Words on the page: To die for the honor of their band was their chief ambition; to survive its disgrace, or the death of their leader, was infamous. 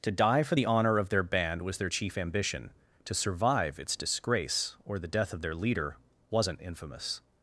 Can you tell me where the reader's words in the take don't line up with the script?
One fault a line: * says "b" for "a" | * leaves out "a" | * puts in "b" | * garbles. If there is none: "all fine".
* says "wasn't" for "was"